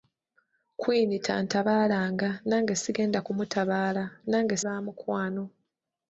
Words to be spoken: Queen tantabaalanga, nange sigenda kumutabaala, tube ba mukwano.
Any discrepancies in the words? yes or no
yes